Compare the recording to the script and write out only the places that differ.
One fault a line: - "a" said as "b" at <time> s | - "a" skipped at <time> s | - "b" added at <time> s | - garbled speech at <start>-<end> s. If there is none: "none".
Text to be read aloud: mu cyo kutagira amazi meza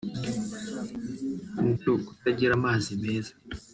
none